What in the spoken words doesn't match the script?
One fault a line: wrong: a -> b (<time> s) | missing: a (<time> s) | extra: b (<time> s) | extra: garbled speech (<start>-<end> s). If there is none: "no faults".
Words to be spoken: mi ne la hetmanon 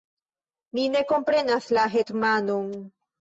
extra: komprenas (1.1 s)